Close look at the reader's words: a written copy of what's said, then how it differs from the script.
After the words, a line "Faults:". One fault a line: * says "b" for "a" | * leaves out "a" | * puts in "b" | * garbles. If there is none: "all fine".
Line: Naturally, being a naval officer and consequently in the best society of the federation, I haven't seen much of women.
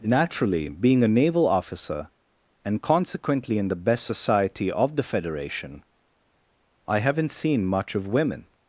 Naturally, being a naval officer and consequently in the best society of the federation, I haven't seen much of women.
Faults:
all fine